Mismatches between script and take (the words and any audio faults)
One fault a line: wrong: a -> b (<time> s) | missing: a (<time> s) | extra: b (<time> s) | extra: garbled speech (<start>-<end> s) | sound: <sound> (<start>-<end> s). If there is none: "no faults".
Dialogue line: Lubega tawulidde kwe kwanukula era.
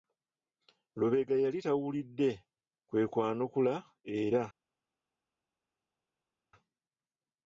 extra: yali (1.4 s)